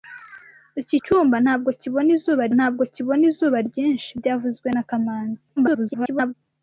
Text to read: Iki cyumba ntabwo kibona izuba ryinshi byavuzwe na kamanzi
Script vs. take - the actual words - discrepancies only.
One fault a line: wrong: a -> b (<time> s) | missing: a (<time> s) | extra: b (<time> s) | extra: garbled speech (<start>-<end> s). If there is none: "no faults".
extra: ntabwo kibona izuba (2.6 s)
extra: garbled speech (5.6-6.3 s)